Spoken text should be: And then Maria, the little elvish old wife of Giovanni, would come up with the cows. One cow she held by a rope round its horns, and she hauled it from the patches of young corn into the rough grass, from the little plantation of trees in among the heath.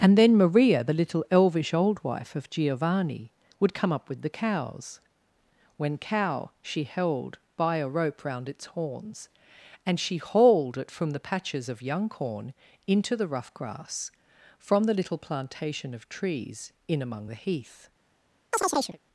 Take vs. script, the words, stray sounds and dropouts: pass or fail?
fail